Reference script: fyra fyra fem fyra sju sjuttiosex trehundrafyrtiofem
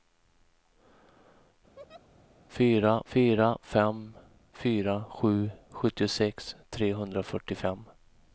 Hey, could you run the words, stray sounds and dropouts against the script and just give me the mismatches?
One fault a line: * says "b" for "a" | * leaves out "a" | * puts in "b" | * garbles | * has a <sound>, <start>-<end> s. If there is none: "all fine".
* has a laugh, 1.8-2.1 s